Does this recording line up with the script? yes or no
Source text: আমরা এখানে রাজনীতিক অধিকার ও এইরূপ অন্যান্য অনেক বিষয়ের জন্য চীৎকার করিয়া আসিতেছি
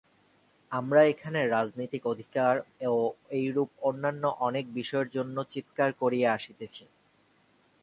yes